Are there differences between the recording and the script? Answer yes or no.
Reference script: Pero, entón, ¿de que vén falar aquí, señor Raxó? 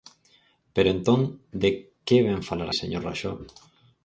yes